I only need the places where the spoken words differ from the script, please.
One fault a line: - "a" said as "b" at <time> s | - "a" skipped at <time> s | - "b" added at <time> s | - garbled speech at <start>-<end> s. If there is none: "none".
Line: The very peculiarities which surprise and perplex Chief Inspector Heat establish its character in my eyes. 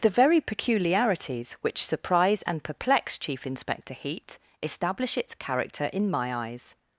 none